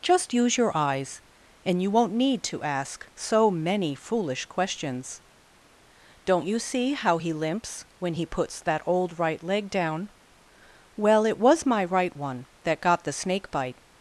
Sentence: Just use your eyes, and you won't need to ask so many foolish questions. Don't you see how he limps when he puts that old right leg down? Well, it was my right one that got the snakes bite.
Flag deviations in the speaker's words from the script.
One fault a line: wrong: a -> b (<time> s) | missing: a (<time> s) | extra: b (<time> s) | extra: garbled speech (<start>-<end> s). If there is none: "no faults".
wrong: snakes -> snake (13.1 s)